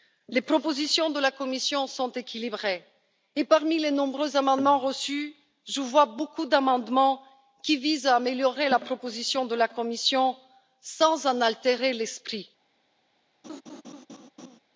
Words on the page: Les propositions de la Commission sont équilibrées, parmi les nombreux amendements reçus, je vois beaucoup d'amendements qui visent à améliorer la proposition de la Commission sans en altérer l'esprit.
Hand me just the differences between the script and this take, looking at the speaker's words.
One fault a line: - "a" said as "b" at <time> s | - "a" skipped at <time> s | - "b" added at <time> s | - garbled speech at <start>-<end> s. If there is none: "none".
- "et" added at 3.3 s